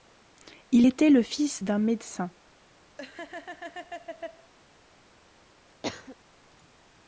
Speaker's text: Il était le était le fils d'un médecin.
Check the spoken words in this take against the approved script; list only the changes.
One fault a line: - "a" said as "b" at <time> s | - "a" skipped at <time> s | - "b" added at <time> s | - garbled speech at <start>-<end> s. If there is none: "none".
- "était le" skipped at 1.2 s